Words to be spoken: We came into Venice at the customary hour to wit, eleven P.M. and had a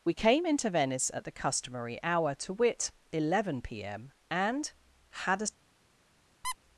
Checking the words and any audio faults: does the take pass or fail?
fail